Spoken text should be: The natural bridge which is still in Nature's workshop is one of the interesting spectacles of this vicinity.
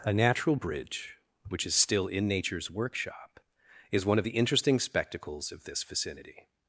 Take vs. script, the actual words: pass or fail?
fail